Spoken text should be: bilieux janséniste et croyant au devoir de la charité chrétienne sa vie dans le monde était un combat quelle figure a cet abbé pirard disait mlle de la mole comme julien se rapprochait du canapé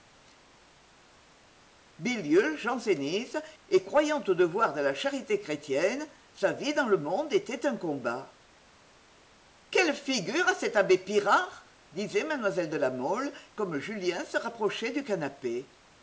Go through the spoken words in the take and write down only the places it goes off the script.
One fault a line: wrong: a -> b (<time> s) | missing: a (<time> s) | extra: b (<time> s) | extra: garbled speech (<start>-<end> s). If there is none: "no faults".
no faults